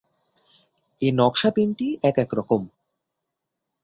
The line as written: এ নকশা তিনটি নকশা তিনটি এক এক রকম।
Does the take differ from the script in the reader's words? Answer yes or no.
yes